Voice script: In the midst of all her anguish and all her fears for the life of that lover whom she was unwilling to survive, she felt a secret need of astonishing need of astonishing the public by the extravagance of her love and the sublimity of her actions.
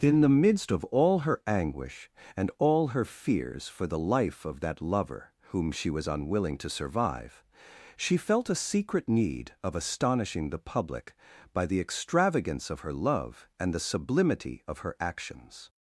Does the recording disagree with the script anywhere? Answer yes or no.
yes